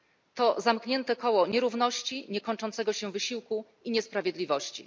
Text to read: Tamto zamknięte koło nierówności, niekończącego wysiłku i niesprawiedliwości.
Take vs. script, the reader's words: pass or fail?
fail